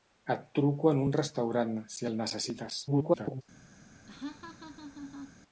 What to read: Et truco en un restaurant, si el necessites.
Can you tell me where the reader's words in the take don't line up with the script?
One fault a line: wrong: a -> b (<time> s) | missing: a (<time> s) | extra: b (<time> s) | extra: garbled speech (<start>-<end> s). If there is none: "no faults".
extra: garbled speech (2.9-3.4 s)